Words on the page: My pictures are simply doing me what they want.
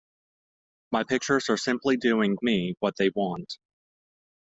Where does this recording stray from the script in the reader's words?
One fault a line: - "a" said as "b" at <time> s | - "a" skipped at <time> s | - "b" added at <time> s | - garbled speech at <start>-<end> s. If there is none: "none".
none